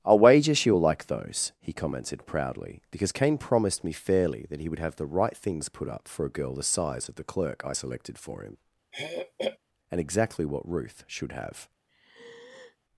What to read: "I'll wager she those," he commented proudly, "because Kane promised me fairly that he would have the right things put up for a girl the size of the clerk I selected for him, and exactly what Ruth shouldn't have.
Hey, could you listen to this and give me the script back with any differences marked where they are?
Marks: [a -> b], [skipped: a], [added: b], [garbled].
"I'll wager she [added: will like] those," he commented proudly, "because Kane promised me fairly that he would have the right things put up for a girl the size of the clerk I selected for him, and exactly what Ruth [shouldn't -> should] have.